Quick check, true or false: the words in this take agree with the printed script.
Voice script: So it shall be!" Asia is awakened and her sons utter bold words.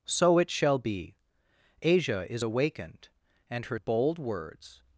false